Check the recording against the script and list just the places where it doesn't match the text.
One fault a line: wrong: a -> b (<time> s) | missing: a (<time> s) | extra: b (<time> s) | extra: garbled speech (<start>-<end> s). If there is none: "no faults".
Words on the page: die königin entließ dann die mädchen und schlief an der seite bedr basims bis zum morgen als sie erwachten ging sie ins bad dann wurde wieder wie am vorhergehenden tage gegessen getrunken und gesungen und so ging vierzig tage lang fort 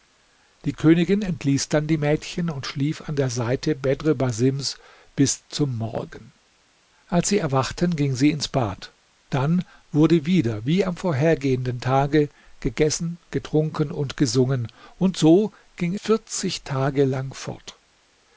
no faults